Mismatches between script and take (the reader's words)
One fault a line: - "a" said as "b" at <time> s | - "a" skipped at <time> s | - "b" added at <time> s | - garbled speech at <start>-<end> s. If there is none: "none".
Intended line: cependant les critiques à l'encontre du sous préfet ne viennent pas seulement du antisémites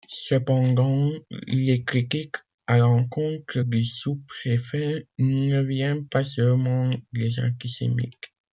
- "du" said as "des" at 7.1 s